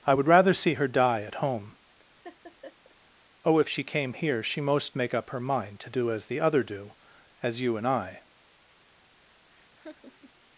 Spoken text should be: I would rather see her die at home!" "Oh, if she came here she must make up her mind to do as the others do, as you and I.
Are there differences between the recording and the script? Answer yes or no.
yes